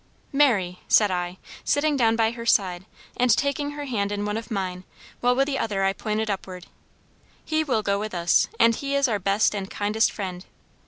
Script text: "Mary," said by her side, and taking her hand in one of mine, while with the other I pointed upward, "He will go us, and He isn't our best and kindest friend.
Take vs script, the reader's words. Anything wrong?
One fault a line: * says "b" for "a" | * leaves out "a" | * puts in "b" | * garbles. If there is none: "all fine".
* puts in "I sitting down"
* puts in "with"
* says "is" for "isn't"